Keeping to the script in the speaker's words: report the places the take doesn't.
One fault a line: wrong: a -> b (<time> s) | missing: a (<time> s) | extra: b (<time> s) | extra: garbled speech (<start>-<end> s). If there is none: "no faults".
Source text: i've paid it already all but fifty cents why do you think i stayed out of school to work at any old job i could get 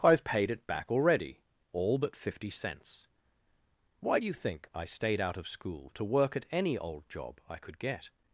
extra: back (0.7 s)